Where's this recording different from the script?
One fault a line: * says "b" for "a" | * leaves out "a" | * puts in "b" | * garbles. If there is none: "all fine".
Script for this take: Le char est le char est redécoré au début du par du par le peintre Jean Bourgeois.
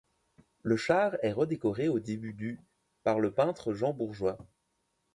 * leaves out "le char est"
* leaves out "du par"